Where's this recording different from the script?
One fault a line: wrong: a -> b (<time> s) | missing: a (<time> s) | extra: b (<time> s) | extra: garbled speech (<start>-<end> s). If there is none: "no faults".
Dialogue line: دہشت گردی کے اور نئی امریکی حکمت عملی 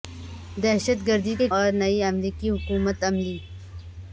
no faults